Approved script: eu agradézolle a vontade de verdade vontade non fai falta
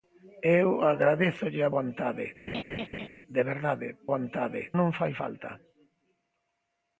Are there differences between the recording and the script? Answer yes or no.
no